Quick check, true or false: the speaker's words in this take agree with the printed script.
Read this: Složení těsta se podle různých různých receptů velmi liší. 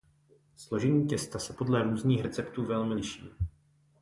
false